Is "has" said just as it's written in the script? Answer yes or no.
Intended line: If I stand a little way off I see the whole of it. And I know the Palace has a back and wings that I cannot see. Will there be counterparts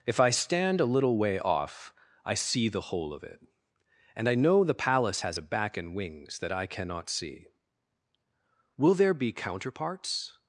yes